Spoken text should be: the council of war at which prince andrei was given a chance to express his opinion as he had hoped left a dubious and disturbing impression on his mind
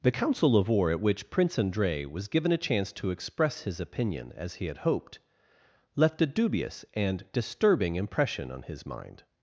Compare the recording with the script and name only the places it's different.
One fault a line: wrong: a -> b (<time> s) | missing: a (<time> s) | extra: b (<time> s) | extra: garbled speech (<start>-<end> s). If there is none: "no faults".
no faults